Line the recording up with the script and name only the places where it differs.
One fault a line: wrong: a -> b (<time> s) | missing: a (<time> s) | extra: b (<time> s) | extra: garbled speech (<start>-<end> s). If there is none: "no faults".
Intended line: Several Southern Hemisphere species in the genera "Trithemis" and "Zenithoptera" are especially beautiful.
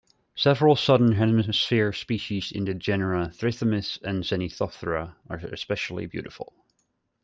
no faults